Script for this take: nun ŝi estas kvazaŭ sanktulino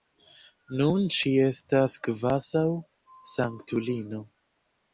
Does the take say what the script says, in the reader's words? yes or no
yes